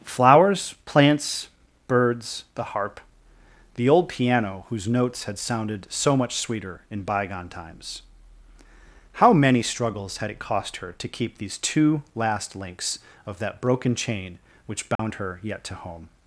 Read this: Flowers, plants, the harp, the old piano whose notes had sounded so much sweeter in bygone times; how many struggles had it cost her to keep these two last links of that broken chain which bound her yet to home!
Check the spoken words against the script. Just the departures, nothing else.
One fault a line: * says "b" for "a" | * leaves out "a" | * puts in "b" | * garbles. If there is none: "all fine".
* puts in "birds"